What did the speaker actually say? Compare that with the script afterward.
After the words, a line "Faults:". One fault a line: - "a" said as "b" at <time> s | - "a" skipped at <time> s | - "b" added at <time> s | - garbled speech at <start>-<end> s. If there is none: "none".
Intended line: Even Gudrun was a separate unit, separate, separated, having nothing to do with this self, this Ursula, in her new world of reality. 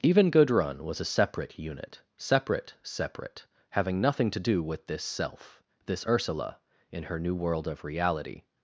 Even Gudrun was a separate unit, separate, separate, having nothing to do with this self, this Ursula, in her new world of reality.
Faults:
- "separated" said as "separate" at 2.8 s